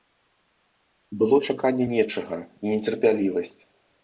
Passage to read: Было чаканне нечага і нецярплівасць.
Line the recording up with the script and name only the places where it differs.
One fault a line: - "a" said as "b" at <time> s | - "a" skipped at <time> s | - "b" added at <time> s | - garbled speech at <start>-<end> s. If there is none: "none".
none